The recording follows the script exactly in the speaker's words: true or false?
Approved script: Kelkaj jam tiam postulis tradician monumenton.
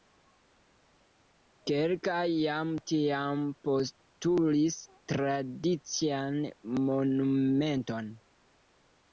true